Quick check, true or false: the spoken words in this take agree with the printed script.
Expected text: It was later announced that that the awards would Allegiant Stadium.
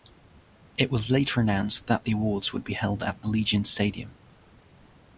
false